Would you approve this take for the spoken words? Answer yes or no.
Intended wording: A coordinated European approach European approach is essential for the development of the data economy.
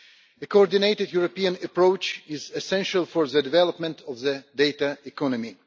no